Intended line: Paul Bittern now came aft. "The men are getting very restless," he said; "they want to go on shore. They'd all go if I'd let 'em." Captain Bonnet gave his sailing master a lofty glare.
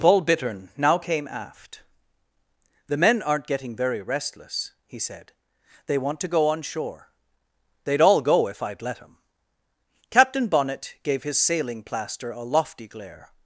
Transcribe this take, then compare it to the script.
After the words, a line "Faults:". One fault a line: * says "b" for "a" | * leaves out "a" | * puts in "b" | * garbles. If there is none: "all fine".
Paul Bittern now came aft. "The men aren't getting very restless," he said; "they want to go on shore. They'd all go if I'd let 'em." Captain Bonnet gave his sailing plaster a lofty glare.
Faults:
* says "aren't" for "are"
* says "plaster" for "master"